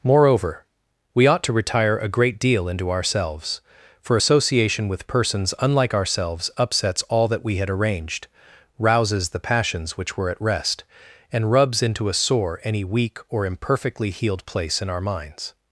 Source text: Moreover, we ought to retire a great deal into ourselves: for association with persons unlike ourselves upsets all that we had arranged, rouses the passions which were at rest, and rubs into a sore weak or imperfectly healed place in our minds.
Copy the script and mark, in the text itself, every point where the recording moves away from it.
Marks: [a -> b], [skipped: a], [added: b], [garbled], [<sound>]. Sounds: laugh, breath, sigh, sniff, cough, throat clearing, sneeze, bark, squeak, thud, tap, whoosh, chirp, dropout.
Moreover, we ought to retire a great deal into ourselves: for association with persons unlike ourselves upsets all that we had arranged, rouses the passions which were at rest, and rubs into a sore [added: any] weak or imperfectly healed place in our minds.